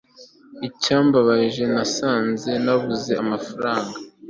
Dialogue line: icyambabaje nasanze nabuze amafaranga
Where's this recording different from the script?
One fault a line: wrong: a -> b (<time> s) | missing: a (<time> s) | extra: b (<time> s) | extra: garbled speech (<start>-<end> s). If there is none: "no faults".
no faults